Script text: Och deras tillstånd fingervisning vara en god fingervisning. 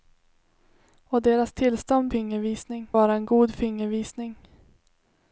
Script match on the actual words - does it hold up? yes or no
yes